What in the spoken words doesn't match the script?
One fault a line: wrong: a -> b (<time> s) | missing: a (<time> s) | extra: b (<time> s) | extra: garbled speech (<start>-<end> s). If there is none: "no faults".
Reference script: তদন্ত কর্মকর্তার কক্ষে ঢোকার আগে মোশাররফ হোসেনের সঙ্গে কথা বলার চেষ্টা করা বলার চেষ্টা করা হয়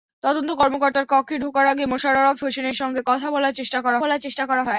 no faults